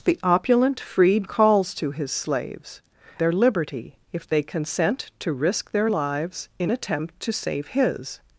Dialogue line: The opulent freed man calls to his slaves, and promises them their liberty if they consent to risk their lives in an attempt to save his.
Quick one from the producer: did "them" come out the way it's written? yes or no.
no